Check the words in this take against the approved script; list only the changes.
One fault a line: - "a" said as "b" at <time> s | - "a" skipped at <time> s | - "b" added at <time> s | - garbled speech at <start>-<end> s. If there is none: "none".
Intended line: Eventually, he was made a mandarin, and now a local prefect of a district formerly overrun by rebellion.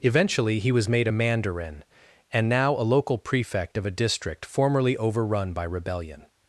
none